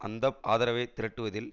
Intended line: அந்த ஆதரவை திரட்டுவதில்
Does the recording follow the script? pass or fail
pass